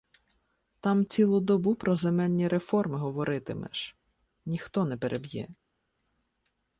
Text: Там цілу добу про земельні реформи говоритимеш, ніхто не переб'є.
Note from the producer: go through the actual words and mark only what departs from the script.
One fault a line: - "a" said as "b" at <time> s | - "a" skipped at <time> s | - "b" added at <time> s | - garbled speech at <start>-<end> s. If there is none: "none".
none